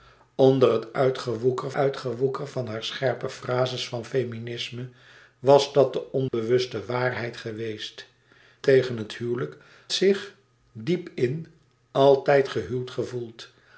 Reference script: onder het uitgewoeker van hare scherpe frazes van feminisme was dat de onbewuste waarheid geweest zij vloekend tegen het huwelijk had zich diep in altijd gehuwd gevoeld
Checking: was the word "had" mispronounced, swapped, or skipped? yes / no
yes